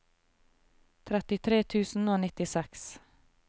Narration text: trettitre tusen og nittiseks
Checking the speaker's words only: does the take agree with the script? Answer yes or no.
yes